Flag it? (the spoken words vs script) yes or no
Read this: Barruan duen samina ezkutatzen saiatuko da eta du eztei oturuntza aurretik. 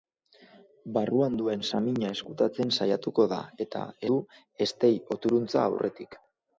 no